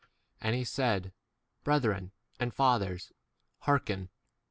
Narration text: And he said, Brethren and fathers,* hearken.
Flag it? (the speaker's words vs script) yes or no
no